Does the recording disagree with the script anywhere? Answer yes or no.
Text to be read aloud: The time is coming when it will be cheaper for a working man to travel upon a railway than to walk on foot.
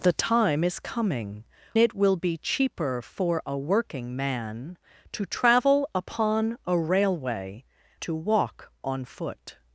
yes